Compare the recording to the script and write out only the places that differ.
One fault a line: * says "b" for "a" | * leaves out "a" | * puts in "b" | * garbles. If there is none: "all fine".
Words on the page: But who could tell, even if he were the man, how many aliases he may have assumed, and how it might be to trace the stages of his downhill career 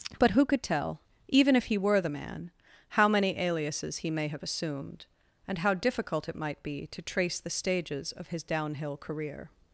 * puts in "difficult"